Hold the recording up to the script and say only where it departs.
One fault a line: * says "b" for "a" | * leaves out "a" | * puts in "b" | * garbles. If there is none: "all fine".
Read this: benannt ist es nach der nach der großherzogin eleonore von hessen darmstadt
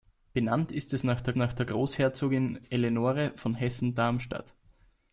all fine